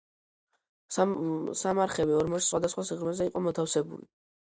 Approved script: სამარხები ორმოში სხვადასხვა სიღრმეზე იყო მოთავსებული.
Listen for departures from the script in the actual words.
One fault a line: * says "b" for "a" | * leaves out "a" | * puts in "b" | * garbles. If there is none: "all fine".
all fine